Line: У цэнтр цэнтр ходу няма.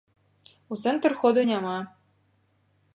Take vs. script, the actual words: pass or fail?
fail